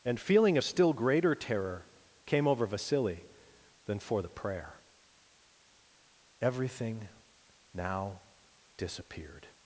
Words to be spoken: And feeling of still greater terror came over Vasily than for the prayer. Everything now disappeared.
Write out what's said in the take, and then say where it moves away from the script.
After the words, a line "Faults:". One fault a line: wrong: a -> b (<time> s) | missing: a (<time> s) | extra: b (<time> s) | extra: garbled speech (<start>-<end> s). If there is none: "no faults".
And feeling of still greater terror came over Vasily than for the prayer. Everything now disappeared.
Faults:
no faults